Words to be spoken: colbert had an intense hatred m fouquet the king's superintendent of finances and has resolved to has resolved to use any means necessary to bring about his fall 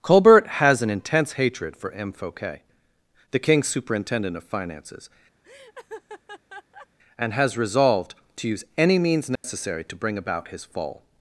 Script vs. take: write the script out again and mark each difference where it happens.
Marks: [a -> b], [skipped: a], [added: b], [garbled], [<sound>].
colbert [had -> has] an intense hatred [added: for] m fouquet the king's superintendent of finances [laugh] and has resolved to [skipped: has resolved to] use any means necessary [dropout] to bring about his fall